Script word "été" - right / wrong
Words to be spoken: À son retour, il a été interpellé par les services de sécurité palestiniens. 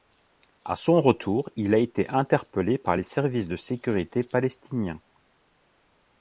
right